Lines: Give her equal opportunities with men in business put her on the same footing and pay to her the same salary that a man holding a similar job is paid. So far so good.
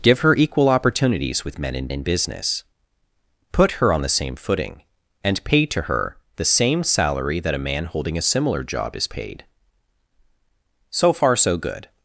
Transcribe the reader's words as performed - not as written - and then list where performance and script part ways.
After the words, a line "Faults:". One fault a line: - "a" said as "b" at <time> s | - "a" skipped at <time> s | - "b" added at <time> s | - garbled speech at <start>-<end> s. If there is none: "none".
Give her equal opportunities with men in in business put her on the same footing and pay to her the same salary that a man holding a similar job is paid. So far so good.
Faults:
- "in" added at 1.9 s